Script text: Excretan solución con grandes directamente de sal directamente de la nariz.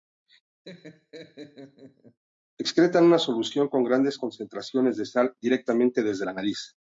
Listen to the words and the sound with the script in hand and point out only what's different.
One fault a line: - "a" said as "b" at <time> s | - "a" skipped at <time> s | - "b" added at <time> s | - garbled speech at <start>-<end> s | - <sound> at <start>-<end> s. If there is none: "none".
- laugh at 0.6-2.2 s
- "una" added at 3.0 s
- "directamente" said as "concentraciones" at 4.2 s
- "de" said as "desde" at 6.0 s